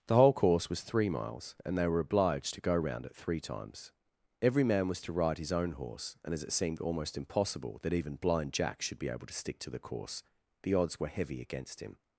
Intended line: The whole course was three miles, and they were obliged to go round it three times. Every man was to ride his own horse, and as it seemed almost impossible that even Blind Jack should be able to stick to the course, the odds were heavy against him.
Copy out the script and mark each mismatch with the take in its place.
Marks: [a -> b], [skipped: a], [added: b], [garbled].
The whole course was three miles, and they were obliged to go round it three times. Every man was to ride his own horse, and as it seemed almost impossible that even Blind Jack should be able to stick to the course, the odds were heavy against him.